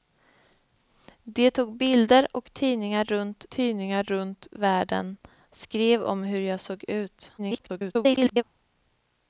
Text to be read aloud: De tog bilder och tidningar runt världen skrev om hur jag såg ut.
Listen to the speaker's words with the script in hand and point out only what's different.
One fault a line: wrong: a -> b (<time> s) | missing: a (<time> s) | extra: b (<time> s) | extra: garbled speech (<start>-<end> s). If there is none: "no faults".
extra: tidningar runt (3.5 s)
extra: garbled speech (7.4-8.4 s)